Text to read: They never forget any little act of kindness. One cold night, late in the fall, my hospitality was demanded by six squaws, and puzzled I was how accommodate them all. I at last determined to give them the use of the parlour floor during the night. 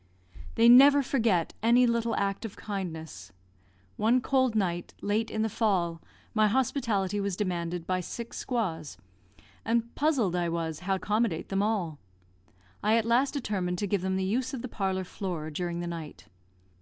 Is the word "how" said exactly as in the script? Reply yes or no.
yes